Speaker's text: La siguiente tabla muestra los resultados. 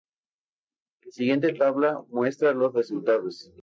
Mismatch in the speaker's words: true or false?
false